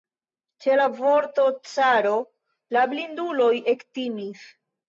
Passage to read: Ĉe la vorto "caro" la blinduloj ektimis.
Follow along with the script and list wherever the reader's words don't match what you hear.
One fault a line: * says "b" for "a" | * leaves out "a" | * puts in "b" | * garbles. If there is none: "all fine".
all fine